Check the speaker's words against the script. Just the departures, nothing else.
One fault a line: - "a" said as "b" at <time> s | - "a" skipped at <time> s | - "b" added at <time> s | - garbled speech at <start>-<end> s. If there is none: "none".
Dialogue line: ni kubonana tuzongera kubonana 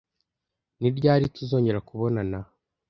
- "kubonana" said as "ryari" at 1.0 s